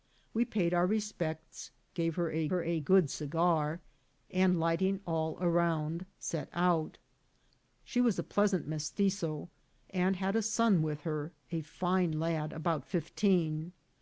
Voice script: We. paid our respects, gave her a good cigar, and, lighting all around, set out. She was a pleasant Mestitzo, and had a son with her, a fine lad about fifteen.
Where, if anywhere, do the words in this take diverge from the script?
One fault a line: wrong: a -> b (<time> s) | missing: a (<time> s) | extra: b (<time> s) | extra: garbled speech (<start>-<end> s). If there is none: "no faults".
extra: her a (2.5 s)